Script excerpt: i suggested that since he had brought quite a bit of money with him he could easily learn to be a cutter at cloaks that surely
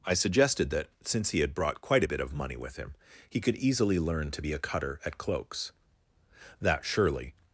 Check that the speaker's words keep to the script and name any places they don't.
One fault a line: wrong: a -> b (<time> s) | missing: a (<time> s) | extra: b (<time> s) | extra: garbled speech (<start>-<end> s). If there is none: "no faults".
no faults